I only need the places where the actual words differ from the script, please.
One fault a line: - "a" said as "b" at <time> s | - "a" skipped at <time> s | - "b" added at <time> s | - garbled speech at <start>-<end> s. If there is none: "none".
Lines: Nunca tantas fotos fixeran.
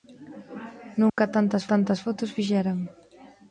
- "tantas" added at 1.7 s